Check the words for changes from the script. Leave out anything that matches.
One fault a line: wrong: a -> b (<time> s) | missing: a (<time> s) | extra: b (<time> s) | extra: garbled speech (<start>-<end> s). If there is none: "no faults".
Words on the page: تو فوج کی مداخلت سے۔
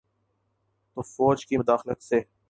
no faults